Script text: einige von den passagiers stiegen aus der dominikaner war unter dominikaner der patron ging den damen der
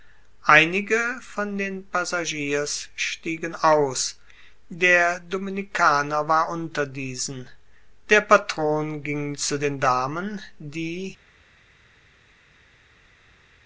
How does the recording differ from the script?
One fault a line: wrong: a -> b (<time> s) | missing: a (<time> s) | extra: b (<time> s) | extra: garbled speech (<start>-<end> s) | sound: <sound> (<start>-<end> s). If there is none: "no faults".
wrong: dominikaner -> diesen (6.9 s)
extra: zu (9.4 s)
wrong: der -> die (10.6 s)